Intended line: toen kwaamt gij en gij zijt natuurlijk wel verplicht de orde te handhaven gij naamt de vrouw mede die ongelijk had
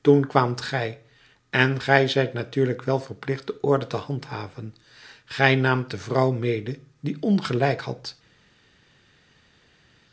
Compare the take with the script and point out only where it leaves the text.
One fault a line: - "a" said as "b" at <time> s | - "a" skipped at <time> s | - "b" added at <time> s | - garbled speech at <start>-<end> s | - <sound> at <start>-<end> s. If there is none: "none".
none